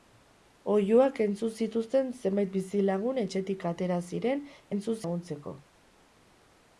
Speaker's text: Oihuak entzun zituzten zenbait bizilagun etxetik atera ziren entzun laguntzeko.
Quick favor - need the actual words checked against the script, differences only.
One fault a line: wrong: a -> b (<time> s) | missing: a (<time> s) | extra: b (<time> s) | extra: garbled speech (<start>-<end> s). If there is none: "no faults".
no faults